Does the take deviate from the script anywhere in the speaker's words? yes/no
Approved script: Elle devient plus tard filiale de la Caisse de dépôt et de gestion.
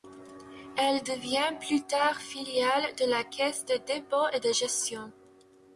no